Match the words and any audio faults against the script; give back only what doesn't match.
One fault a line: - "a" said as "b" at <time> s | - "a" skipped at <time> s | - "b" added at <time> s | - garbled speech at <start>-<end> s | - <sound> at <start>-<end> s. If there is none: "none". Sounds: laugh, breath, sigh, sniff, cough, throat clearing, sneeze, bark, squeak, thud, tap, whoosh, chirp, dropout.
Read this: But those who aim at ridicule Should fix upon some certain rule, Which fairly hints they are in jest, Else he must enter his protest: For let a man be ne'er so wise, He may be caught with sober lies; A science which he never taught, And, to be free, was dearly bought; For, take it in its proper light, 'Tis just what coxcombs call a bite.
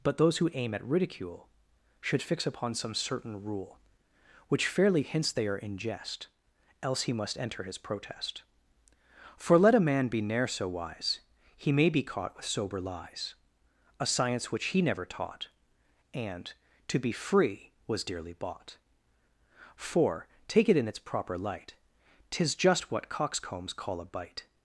none